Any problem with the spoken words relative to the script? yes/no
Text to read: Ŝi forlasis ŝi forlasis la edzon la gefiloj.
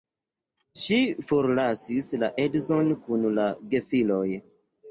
yes